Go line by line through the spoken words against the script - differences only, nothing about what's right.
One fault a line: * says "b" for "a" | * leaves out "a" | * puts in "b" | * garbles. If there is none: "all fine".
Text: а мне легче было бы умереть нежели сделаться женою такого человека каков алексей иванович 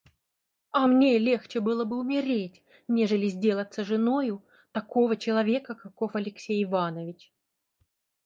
all fine